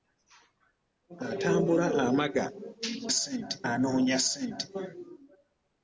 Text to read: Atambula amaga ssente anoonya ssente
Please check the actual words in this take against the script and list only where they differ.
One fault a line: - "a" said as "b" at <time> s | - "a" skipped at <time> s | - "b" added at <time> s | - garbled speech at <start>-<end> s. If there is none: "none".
none